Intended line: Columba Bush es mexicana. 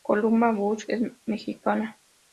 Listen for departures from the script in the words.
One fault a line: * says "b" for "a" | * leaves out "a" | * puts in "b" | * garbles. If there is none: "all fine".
all fine